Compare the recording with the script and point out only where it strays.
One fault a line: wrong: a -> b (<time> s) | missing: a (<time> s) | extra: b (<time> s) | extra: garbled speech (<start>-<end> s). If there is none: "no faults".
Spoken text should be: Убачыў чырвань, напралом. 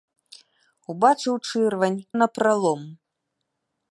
no faults